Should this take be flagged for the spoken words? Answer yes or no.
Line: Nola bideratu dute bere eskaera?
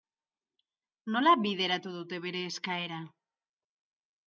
no